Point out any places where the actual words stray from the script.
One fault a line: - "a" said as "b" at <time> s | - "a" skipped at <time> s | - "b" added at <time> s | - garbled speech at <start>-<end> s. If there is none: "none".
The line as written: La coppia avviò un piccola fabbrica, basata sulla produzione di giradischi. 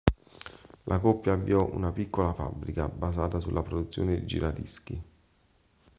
- "un" said as "una" at 1.7 s